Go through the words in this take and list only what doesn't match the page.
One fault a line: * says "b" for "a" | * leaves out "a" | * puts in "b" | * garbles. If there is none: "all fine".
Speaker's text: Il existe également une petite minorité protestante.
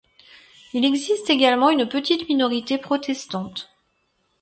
all fine